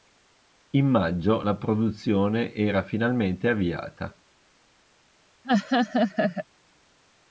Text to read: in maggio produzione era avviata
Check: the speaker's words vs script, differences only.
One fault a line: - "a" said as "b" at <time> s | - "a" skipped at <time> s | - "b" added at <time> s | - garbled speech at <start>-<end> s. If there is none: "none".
- "la" added at 1.4 s
- "finalmente" added at 2.8 s